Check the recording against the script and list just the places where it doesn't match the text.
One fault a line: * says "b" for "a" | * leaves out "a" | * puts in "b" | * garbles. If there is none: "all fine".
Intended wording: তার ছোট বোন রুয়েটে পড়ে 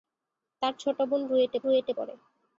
* puts in "রুয়েটে"